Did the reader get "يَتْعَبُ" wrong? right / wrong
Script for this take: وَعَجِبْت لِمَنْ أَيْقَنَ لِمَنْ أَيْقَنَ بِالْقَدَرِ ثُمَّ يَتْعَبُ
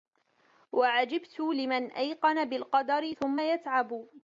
right